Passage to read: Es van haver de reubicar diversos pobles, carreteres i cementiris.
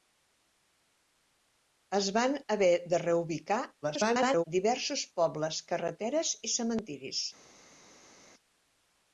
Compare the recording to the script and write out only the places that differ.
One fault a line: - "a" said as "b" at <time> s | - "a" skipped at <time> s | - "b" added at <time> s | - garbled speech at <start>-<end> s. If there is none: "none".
- garbled speech at 3.8-4.4 s